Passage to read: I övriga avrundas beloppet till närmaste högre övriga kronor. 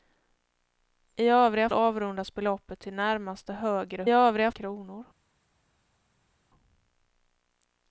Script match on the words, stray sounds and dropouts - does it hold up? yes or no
yes